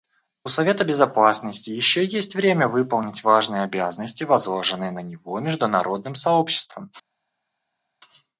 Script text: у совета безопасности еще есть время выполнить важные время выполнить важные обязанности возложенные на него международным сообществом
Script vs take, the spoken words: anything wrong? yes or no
yes